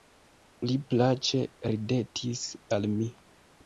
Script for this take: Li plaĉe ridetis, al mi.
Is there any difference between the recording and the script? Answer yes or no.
no